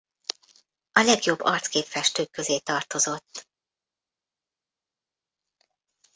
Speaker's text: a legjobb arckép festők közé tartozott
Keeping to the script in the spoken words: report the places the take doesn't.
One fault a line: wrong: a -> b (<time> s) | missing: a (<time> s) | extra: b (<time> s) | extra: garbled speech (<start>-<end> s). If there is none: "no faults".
no faults